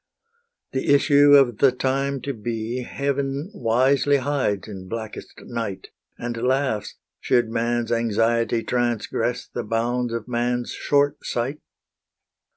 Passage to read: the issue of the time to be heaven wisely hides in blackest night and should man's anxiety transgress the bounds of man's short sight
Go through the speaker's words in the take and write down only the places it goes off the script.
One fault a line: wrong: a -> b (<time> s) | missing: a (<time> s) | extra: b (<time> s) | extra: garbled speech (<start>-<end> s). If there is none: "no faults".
extra: laughs (6.5 s)